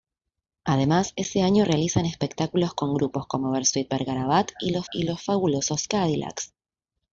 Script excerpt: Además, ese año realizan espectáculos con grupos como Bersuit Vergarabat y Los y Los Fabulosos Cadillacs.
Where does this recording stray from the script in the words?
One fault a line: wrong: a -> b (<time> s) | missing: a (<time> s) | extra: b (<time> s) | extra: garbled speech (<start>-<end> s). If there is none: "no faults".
no faults